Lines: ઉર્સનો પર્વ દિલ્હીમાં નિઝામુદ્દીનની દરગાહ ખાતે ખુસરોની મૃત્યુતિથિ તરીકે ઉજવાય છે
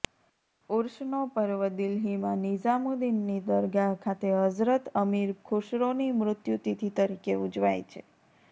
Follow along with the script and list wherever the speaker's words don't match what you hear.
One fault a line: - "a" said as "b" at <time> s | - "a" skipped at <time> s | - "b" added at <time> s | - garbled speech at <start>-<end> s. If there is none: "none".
- "હઝરત અમીર" added at 4.4 s